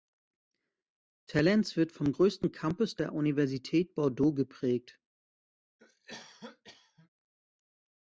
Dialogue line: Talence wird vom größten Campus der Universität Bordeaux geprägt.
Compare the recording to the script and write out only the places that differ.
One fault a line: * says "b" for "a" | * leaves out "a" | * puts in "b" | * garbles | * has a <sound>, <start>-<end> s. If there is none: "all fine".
* has a cough, 5.8-7.1 s